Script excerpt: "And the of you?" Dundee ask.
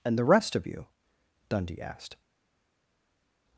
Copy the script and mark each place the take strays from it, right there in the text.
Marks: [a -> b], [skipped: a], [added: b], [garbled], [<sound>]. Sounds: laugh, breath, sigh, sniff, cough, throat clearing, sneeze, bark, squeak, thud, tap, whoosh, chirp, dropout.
"And the [added: rest] of you?" Dundee [ask. -> asked]